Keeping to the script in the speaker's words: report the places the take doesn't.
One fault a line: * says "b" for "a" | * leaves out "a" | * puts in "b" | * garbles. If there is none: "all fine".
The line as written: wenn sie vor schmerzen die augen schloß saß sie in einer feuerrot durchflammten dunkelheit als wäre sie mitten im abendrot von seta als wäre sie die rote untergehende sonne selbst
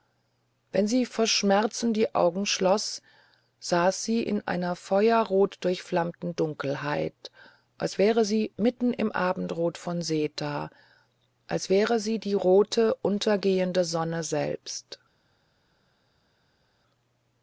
all fine